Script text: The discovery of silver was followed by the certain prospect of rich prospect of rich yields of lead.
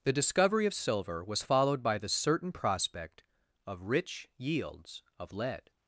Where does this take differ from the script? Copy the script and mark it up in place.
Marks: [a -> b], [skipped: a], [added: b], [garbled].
The discovery of silver was followed by the certain prospect of rich [skipped: prospect of rich] yields of lead.